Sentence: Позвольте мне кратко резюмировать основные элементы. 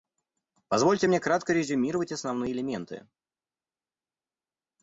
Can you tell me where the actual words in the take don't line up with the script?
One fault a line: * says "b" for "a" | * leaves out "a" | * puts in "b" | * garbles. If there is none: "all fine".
all fine